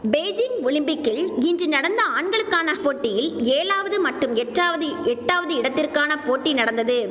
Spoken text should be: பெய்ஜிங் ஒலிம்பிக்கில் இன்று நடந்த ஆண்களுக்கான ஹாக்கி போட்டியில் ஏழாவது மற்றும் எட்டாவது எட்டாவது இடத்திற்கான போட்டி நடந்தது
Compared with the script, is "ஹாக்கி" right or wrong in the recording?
wrong